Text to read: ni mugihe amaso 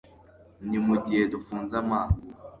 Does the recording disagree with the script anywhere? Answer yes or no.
yes